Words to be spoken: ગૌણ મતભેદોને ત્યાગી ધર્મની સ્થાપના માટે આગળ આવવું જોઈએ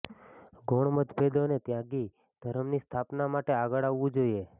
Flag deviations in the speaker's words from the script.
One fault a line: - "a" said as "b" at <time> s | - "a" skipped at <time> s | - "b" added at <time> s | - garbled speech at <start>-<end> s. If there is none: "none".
none